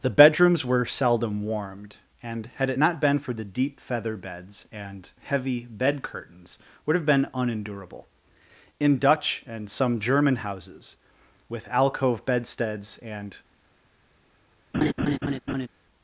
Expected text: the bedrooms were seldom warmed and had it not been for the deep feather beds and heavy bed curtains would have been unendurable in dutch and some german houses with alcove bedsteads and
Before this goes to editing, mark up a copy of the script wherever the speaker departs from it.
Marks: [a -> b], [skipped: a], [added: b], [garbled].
the bedrooms were seldom warmed and had it not been for the deep feather beds and heavy bed curtains would have been unendurable in dutch and some german houses with alcove bedsteads and